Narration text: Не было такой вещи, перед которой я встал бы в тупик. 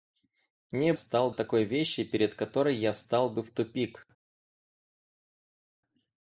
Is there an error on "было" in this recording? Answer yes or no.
yes